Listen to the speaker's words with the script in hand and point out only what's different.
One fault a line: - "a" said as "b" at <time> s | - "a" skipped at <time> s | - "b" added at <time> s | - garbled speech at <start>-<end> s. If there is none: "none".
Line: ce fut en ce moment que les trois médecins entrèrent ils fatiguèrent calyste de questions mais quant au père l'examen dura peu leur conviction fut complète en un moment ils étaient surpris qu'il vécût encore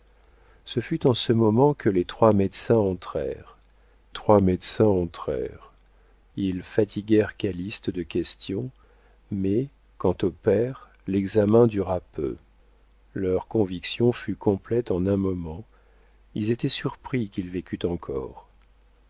- "trois médecins entrèrent" added at 4.1 s